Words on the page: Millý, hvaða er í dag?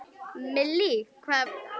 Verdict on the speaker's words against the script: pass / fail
pass